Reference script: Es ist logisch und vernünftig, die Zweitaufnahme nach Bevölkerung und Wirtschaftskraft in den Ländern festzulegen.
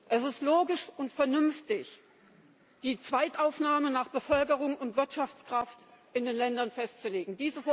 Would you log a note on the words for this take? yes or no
no